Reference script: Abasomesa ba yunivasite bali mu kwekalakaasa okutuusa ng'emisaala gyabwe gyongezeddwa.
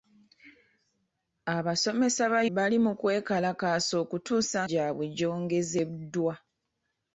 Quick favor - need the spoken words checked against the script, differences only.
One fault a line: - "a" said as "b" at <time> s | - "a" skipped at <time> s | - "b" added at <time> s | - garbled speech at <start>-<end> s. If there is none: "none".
- "yunivasite" skipped at 2.4 s
- "ng'emisaala" skipped at 4.6 s